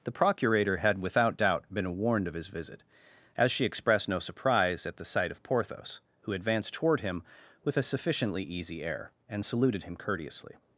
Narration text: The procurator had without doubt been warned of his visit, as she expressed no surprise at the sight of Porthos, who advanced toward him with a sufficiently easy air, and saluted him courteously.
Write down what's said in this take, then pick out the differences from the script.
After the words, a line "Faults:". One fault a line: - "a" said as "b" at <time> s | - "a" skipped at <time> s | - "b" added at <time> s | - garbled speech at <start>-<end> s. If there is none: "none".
The procurator had without doubt been warned of his visit, as she expressed no surprise at the sight of Porthos, who advanced toward him with a sufficiently easy air, and saluted him courteously.
Faults:
none